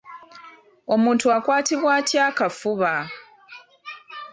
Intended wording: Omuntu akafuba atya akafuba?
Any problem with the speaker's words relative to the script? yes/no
yes